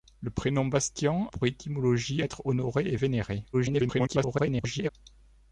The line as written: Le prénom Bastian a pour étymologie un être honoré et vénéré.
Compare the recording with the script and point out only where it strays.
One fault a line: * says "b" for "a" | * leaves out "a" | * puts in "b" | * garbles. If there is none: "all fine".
* leaves out "a"
* leaves out "un"
* garbles